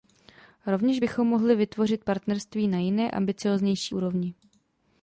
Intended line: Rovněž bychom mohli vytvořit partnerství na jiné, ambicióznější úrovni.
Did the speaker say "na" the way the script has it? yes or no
yes